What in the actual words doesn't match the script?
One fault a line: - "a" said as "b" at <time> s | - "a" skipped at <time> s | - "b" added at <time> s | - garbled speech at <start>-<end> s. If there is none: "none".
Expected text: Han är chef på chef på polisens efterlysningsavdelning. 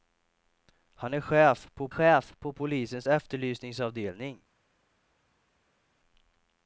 none